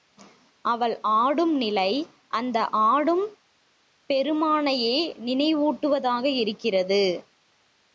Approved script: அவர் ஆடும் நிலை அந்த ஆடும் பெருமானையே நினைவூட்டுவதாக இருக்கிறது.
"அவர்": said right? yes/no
no